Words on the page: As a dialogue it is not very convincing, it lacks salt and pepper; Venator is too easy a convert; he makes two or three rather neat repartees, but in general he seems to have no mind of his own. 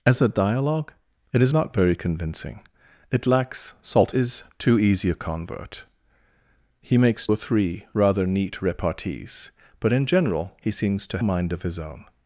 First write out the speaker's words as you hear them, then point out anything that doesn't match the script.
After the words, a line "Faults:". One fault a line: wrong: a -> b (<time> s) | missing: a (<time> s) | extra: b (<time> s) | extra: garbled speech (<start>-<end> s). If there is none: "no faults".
As a dialogue it is not very convincing, it lacks salt is too easy a convert; he makes or three rather neat repartees, but in general he seems to mind of his own.
Faults:
missing: and pepper Venator (4.1 s)
missing: two (7.3 s)
missing: have no (11.2 s)